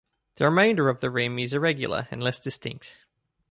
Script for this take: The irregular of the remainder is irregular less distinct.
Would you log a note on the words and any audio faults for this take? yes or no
yes